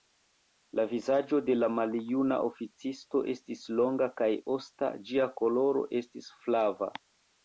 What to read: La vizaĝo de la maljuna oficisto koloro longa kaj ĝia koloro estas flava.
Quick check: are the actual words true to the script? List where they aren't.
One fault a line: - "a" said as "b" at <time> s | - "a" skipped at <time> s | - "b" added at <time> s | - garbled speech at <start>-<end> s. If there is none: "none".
- "koloro" said as "estis" at 3.3 s
- "osta" added at 4.6 s
- "estas" said as "estis" at 6.0 s